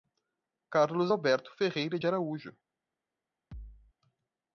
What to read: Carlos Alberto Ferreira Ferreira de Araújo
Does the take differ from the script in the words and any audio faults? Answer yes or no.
yes